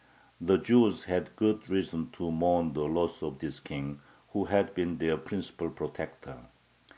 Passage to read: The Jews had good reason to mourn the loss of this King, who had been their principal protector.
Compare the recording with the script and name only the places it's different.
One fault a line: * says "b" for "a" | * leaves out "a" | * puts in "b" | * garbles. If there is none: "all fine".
all fine